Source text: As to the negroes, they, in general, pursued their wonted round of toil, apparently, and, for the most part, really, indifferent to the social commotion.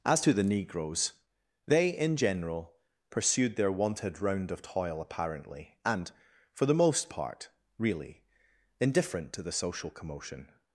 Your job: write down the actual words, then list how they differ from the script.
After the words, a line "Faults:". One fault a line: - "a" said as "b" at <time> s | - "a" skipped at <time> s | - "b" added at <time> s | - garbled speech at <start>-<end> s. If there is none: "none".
As to the negroes, they, in general, pursued their wonted round of toil, apparently, and, for the most part, really, indifferent to the social commotion.
Faults:
none